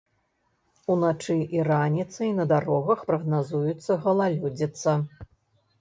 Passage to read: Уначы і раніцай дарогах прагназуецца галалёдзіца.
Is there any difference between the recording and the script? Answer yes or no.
yes